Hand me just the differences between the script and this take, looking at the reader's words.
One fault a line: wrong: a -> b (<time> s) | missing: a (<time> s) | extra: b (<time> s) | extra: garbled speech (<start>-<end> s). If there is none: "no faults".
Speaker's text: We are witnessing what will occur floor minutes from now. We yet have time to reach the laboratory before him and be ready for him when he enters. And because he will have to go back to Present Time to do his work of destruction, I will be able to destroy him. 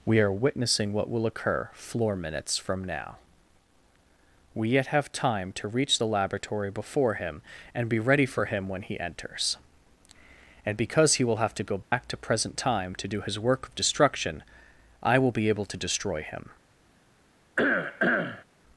no faults